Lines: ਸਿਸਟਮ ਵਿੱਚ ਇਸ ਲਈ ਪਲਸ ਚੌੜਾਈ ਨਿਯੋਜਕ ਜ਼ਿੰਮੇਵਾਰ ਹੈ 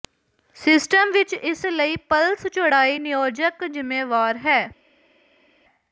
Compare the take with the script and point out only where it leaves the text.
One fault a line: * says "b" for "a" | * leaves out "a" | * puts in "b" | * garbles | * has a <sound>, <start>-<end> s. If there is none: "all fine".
all fine